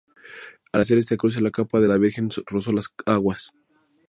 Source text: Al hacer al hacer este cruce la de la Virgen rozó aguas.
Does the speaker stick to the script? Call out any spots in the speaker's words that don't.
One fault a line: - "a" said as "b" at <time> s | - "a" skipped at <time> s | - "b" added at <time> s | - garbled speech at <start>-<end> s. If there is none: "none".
- "al hacer" skipped at 1.0 s
- "capa" added at 1.5 s
- "las" added at 2.7 s